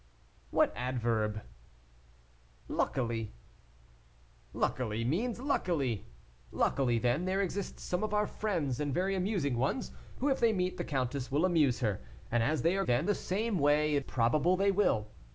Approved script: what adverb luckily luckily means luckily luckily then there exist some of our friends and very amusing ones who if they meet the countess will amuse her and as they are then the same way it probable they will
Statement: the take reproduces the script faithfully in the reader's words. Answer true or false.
true